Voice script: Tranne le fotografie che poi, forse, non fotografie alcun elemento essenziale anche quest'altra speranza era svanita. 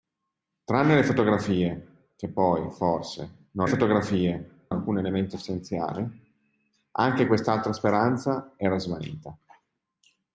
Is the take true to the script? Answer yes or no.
yes